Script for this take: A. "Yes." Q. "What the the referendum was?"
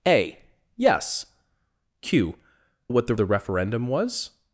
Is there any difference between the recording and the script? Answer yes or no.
no